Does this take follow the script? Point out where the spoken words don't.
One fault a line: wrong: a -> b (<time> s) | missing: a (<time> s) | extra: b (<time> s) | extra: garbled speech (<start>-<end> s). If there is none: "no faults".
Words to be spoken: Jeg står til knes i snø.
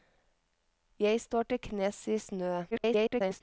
extra: garbled speech (2.7-3.4 s)